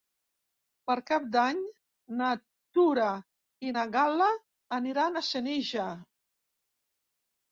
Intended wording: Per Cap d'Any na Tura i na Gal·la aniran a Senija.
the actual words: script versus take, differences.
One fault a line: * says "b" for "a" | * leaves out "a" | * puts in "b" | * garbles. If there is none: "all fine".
all fine